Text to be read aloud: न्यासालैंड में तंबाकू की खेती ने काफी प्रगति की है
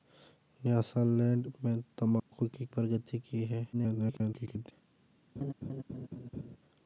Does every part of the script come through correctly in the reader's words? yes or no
no